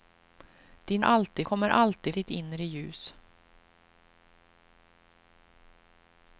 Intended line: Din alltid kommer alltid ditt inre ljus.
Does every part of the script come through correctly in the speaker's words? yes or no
yes